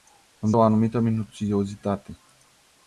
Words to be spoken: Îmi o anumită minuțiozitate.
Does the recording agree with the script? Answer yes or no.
yes